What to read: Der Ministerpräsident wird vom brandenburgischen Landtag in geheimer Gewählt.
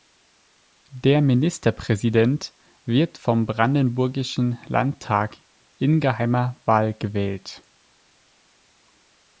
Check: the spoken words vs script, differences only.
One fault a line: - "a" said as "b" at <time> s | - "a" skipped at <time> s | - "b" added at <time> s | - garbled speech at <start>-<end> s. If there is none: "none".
- "Wahl" added at 6.7 s